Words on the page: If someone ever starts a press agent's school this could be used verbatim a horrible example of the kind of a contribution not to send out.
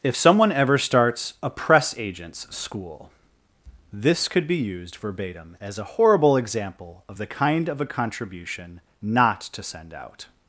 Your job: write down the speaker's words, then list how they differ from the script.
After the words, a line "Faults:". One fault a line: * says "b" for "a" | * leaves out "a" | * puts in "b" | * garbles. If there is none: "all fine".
If someone ever starts a press agent's school this could be used verbatim as a horrible example of the kind of a contribution not to send out.
Faults:
* puts in "as"